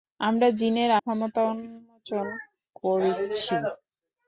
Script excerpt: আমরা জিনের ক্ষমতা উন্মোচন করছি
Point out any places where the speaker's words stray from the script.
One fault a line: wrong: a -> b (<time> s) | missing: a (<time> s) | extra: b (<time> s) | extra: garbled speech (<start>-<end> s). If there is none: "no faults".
no faults